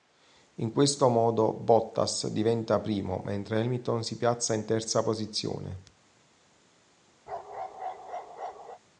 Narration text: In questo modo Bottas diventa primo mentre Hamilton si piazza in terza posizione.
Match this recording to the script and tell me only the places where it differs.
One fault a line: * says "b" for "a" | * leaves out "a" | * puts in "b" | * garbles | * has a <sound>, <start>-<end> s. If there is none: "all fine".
* has a bark, 7.3-8.8 s